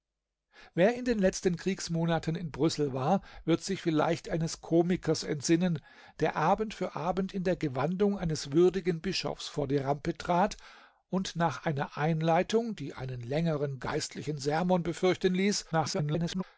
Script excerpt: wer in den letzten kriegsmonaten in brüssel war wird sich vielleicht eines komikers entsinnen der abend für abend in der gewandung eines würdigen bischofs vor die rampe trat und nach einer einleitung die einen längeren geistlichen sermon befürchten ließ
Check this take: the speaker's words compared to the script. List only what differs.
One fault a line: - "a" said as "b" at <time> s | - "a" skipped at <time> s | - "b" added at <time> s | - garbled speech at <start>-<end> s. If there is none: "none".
- garbled speech at 15.7-16.4 s